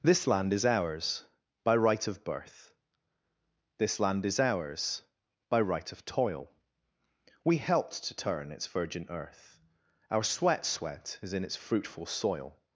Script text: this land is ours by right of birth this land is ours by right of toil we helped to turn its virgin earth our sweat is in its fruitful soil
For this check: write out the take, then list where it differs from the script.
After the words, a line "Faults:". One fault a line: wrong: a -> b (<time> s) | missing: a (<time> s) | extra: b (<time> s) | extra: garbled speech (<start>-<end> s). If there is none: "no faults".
this land is ours by right of birth this land is ours by right of toil we helped to turn its virgin earth our sweat sweat is in its fruitful soil
Faults:
extra: sweat (10.7 s)